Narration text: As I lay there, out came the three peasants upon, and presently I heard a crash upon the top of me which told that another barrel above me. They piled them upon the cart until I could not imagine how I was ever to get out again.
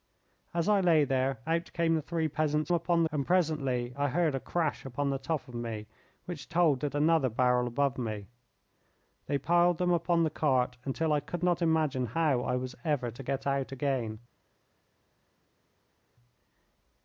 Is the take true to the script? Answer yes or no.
yes